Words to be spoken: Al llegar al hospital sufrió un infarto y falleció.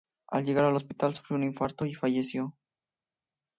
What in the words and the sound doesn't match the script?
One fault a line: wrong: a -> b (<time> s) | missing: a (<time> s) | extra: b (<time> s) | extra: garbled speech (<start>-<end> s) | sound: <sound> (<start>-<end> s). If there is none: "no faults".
no faults